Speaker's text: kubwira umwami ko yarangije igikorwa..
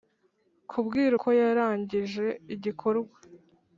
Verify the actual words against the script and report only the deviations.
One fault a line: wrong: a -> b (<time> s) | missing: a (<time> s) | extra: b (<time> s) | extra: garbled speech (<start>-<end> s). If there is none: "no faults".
missing: umwami (1.1 s)